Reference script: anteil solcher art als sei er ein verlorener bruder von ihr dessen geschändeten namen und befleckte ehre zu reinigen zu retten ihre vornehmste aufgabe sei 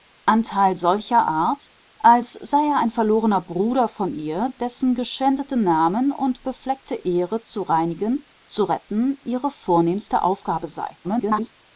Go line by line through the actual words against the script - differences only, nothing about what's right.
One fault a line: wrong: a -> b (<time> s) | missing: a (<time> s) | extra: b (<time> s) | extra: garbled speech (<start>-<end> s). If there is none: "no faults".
extra: garbled speech (11.0-11.5 s)